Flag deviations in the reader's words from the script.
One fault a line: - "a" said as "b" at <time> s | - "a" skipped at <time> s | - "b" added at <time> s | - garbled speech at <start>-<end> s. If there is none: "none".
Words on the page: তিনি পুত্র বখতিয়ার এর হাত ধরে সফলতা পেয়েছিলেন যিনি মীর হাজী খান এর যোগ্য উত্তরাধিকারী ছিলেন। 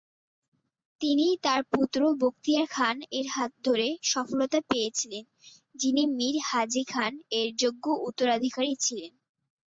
- "তার" added at 1.4 s
- "খান" added at 2.7 s